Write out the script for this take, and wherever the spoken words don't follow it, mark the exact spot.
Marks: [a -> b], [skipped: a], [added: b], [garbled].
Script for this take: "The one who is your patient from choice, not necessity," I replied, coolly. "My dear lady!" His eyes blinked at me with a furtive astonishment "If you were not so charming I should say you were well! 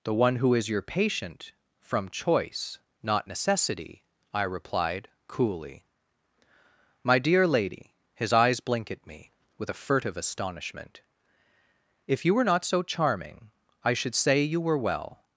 "The one who is your patient from choice, not necessity," I replied, coolly. "My dear lady!" His eyes [blinked -> blink] at me with a furtive astonishment "If you were not so charming I should say you were well!